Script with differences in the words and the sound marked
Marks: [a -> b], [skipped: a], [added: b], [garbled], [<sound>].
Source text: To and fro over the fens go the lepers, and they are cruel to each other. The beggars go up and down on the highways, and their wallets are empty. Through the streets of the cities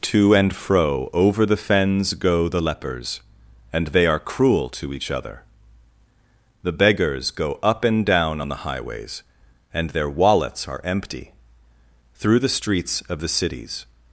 To and fro over the fens go the lepers, and they are cruel to each other. The beggars go up and down on the highways, and their wallets are empty. Through the streets of the cities